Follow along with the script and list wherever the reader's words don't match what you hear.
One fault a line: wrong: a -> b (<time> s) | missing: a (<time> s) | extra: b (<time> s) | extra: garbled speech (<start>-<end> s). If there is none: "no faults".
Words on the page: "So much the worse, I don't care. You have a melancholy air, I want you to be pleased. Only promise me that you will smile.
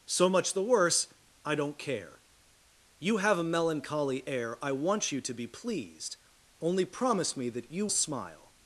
missing: will (7.9 s)